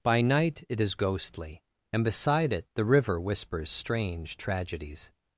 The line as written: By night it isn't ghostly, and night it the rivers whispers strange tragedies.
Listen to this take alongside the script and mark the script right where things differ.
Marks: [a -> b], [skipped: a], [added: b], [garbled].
By night it [isn't -> is] ghostly, and [night -> beside] it the [rivers -> river] whispers strange tragedies.